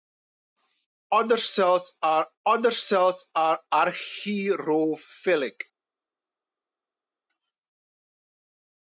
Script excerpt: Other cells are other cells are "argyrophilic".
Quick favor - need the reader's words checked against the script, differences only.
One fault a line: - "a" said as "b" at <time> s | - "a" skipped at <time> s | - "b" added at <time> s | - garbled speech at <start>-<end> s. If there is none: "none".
none